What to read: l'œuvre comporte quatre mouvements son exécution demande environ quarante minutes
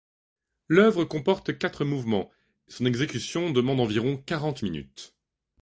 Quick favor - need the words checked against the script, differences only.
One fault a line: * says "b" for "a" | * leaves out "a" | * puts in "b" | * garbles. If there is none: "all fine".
all fine